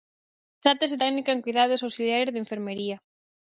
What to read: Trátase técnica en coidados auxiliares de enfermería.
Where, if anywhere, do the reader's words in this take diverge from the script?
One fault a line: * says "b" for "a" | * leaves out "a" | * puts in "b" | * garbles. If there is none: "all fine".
all fine